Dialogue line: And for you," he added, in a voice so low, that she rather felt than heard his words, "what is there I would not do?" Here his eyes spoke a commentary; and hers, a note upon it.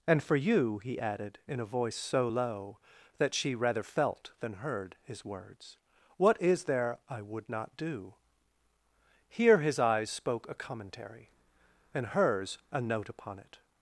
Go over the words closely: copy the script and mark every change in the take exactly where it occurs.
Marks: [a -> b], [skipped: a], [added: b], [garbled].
And for you," he added, in a voice so low, that she rather felt than heard his words, "what is there I would not do?" Here his eyes spoke a commentary; and hers, a note upon it.